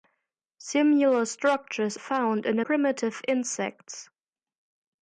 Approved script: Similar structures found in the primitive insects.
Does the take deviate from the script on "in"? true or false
false